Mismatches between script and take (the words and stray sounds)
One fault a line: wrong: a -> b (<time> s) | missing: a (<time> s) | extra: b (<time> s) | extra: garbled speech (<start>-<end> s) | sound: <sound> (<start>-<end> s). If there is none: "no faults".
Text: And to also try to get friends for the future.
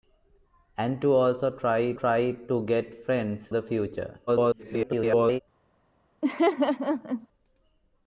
extra: try (1.9 s)
missing: for (3.5 s)
extra: garbled speech (4.3-5.4 s)
sound: laugh (6.2-7.3 s)